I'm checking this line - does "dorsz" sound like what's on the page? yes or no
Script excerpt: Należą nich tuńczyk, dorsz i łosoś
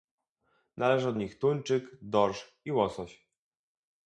yes